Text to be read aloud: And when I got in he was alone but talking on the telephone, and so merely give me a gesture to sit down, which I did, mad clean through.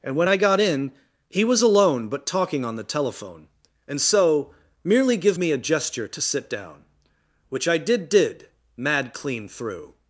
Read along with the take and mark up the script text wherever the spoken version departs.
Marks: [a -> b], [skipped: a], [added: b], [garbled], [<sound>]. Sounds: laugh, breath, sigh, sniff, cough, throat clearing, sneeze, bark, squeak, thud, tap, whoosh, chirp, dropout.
And when I got in he was alone but talking on the telephone, and so merely give me a gesture to sit down, which I did, [added: did] mad clean through.